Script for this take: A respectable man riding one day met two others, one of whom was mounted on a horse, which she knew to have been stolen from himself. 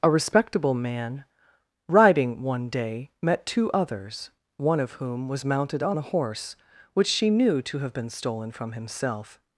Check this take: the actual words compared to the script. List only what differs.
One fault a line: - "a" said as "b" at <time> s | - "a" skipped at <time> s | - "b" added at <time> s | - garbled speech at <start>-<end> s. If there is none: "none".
none